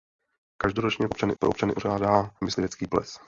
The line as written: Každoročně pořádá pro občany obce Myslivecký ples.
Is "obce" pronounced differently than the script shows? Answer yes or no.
yes